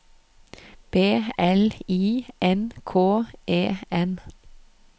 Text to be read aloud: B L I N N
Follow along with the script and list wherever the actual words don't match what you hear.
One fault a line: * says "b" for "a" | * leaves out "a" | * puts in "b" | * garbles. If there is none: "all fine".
* puts in "K E"